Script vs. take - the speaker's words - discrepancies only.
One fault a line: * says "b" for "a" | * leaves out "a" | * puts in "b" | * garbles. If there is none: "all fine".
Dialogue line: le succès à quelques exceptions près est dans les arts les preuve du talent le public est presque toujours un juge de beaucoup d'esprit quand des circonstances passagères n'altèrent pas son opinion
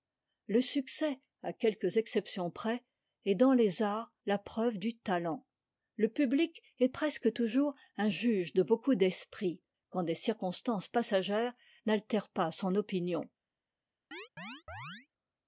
* says "la" for "les"